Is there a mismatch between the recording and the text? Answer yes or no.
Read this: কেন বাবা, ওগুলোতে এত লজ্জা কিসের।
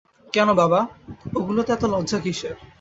no